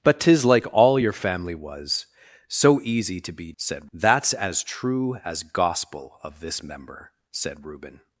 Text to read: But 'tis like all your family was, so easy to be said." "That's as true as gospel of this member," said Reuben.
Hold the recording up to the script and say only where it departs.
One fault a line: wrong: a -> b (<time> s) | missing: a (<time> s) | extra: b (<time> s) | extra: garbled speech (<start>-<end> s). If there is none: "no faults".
no faults